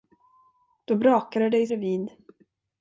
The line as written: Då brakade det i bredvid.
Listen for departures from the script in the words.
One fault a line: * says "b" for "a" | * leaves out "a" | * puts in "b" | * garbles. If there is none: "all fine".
all fine